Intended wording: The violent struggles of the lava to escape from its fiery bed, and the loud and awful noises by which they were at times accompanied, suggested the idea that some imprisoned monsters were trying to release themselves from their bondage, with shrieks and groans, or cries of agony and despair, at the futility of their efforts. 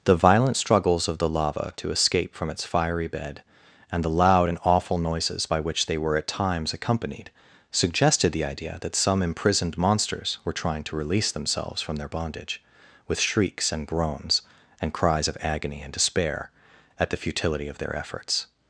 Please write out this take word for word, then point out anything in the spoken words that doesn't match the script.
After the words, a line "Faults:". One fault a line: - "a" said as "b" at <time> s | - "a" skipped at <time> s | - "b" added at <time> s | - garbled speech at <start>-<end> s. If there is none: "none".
The violent struggles of the lava to escape from its fiery bed, and the loud and awful noises by which they were at times accompanied, suggested the idea that some imprisoned monsters were trying to release themselves from their bondage, with shrieks and groans, and cries of agony and despair, at the futility of their efforts.
Faults:
- "or" said as "and" at 14.8 s